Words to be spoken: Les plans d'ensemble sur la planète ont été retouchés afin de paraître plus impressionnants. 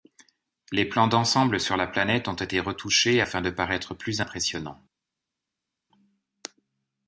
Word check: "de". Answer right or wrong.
right